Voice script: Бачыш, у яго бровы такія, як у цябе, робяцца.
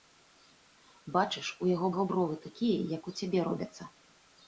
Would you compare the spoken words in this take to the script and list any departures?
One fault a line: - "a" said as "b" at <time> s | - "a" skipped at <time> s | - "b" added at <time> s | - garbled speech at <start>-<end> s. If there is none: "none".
- "яго" added at 1.9 s